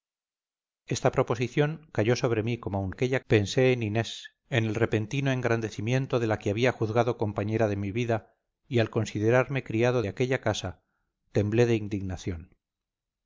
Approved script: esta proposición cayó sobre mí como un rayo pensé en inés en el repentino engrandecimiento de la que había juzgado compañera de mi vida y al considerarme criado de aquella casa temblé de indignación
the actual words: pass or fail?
fail